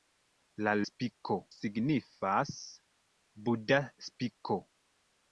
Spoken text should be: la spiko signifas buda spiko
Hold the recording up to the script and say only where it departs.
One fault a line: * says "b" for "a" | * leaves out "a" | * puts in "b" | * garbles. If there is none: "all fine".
all fine